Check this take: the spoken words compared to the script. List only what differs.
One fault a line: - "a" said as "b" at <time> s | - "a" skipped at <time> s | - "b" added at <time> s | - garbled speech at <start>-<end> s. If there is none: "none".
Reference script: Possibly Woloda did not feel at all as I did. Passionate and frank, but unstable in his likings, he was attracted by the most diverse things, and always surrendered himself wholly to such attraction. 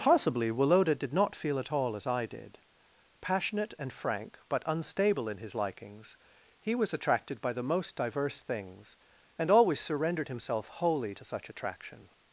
none